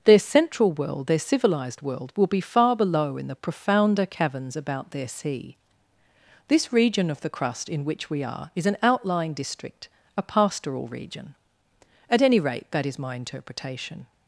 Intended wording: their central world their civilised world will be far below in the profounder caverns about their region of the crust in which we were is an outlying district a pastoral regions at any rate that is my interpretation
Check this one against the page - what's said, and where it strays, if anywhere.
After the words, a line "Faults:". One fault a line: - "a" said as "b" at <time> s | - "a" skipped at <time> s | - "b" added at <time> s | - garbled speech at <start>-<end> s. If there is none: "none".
their central world their civilised world will be far below in the profounder caverns about their sea this region of the crust in which we are is an outlying district a pastoral region at any rate that is my interpretation
Faults:
- "sea this" added at 5.1 s
- "were" said as "are" at 8.2 s
- "regions" said as "region" at 10.9 s